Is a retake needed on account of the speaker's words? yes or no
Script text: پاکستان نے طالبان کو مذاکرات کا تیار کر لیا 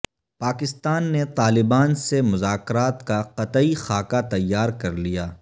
yes